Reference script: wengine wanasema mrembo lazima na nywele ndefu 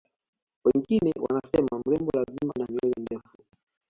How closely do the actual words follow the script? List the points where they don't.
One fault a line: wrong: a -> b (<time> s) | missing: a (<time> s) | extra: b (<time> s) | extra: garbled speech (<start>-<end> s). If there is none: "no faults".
no faults